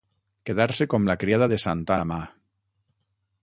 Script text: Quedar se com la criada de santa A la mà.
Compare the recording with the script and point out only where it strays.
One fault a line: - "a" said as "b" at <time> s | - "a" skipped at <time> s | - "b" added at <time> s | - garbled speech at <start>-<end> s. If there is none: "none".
none